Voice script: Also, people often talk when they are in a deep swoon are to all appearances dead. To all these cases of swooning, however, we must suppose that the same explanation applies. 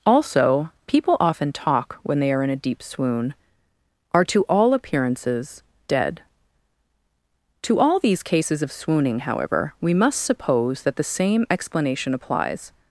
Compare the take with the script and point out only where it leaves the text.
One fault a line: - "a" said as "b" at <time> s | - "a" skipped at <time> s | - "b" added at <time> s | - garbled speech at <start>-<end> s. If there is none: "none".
none